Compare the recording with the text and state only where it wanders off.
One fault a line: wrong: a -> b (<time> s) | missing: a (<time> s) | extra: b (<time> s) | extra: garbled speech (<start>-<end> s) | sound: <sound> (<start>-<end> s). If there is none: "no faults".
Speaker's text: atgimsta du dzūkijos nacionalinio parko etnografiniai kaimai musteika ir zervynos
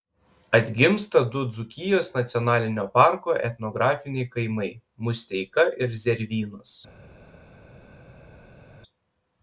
no faults